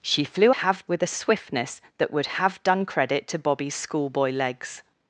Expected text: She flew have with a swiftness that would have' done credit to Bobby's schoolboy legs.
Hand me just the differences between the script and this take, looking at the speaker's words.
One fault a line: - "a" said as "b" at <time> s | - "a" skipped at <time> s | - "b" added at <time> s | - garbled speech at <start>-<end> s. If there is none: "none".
none